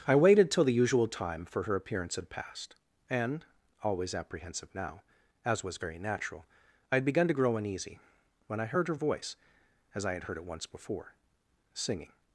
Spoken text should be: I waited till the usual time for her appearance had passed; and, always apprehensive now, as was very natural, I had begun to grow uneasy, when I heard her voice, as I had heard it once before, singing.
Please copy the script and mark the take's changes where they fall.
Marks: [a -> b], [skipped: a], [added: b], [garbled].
I waited till the usual time for her appearance had passed; and, always apprehensive now, as was very natural, I had begun to grow uneasy, when I heard her voice, as I had heard it once before, singing.